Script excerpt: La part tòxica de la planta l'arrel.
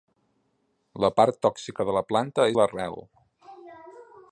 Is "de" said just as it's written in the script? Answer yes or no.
yes